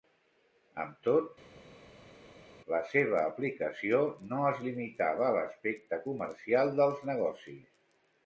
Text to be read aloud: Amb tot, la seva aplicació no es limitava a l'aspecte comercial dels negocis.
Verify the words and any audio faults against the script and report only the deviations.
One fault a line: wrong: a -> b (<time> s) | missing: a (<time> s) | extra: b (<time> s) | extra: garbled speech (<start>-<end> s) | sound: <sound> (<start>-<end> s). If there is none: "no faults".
no faults